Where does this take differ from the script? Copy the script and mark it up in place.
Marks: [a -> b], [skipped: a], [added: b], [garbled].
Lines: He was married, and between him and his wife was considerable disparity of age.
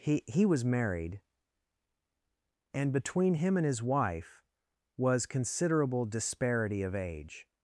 He [added: he] was married, and between him and his wife was considerable disparity of age.